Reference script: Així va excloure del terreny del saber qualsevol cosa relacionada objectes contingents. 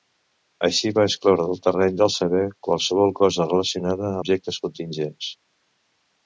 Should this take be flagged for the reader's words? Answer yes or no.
no